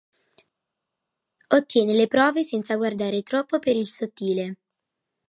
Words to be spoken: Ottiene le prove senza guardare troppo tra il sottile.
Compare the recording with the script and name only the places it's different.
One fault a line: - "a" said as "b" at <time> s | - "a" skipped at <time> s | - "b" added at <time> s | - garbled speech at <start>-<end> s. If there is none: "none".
- "tra" said as "per" at 3.6 s